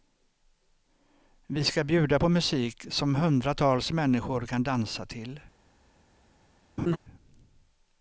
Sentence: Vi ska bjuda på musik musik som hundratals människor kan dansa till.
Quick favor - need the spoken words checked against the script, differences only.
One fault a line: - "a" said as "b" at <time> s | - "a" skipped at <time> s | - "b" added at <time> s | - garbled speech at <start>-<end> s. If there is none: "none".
- "musik" skipped at 2.9 s